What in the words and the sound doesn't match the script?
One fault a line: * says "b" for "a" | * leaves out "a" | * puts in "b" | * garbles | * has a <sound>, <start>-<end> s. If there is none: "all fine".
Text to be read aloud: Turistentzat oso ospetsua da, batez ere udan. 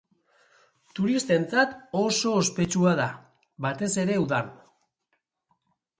all fine